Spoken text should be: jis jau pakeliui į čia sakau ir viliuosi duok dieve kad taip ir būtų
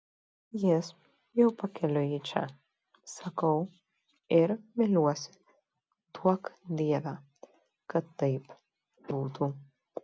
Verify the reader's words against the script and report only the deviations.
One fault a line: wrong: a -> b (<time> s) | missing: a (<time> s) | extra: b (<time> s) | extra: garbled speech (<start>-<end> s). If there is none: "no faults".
missing: ir (8.6 s)